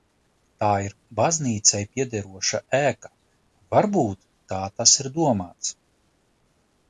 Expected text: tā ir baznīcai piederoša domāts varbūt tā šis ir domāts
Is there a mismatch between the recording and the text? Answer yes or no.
yes